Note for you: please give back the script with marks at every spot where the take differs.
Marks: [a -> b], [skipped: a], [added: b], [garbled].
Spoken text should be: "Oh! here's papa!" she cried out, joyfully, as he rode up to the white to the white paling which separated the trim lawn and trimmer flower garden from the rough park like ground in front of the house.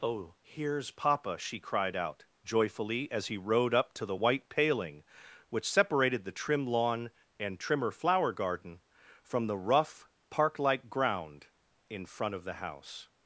"Oh! here's papa!" she cried out, joyfully, as he rode up to the white [skipped: to the white] paling which separated the trim lawn and trimmer flower garden from the rough park like ground in front of the house.